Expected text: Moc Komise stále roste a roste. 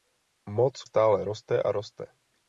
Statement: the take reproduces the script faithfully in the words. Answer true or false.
false